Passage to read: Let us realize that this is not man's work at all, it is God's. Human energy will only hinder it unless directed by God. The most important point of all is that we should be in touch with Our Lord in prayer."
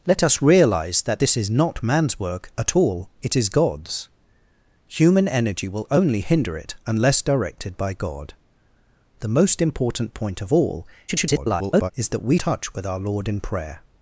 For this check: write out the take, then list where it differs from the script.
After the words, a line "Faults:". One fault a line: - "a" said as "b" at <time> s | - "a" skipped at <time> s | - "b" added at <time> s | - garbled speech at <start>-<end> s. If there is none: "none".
Let us realize that this is not man's work at all, it is God's. Human energy will only hinder it unless directed by God. The most important point of all [garbled] is that we touch with Our Lord in prayer."
Faults:
- garbled speech at 11.1-11.9 s
- "should be in" skipped at 12.4 s